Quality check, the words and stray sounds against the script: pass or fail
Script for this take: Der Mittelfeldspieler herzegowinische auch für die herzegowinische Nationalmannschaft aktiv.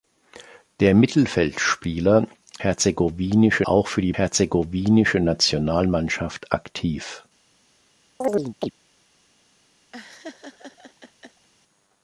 fail